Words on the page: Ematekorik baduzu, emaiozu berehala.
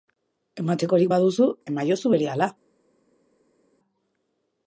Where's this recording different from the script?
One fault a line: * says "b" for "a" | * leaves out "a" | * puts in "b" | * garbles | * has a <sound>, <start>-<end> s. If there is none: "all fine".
all fine